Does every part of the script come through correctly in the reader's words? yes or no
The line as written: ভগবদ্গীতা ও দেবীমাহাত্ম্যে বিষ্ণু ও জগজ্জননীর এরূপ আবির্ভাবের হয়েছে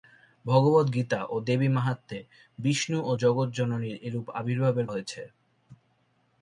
yes